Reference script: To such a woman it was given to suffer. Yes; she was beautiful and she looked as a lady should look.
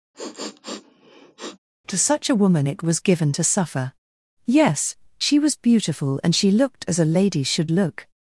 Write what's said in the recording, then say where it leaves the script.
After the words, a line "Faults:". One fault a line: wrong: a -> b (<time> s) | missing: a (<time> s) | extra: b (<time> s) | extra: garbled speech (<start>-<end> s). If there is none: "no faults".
To such a woman it was given to suffer. Yes; she was beautiful and she looked as a lady should look.
Faults:
no faults